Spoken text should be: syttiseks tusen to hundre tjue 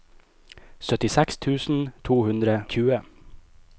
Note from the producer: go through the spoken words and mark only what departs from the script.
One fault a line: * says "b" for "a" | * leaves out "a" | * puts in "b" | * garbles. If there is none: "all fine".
all fine